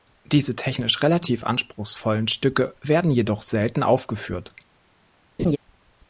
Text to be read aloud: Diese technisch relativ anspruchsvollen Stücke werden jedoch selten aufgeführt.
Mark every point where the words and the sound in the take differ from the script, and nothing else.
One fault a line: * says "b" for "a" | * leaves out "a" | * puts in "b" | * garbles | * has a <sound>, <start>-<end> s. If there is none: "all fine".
* has a laugh, 5.4-5.6 s